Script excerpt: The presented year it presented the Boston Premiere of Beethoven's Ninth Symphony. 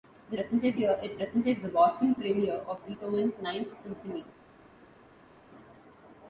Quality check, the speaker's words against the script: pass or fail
pass